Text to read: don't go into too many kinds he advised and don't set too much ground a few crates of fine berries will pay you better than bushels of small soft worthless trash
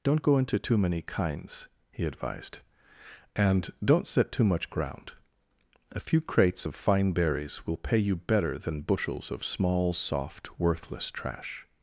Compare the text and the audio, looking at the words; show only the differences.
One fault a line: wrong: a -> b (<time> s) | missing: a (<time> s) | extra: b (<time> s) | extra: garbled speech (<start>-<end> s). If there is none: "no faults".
no faults